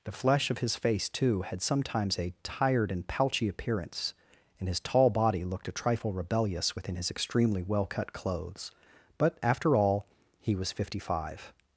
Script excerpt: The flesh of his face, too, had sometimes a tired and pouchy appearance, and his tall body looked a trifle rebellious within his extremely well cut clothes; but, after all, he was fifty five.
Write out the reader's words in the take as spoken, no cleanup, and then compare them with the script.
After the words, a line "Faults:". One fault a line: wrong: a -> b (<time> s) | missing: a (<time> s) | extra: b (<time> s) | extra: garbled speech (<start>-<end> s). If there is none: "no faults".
The flesh of his face, too, had sometimes a tired and pouchy appearance, and his tall body looked a trifle rebellious within his extremely well cut clothes; but, after all, he was fifty five.
Faults:
no faults